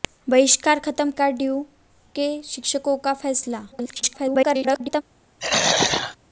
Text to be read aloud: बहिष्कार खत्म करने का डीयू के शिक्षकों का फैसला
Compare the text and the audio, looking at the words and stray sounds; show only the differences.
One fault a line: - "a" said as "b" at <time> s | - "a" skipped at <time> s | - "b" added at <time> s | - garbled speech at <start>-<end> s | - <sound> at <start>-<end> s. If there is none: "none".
- "करने" skipped at 1.1 s
- garbled speech at 3.7-5.0 s
- throat clearing at 5.4-6.2 s